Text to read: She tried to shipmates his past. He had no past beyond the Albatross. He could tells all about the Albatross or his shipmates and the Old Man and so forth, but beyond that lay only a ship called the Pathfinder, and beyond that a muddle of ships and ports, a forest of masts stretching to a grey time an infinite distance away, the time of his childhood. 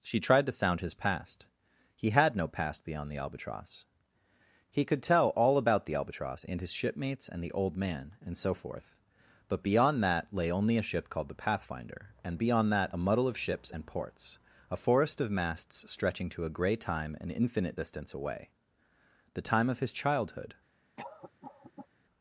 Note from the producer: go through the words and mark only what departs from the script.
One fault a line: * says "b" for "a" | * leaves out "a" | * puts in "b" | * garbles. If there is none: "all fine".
* says "sound" for "shipmates"
* says "tell" for "tells"
* says "and" for "or"